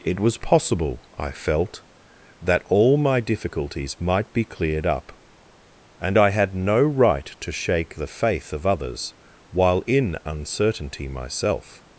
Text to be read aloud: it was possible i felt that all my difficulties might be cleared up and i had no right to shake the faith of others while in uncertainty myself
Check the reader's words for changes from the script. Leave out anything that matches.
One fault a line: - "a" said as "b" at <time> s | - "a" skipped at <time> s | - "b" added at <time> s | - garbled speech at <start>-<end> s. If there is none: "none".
none